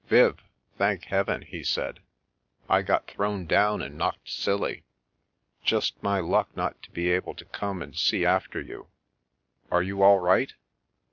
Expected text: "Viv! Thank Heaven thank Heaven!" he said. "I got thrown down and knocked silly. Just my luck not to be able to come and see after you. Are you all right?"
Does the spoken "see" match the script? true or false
true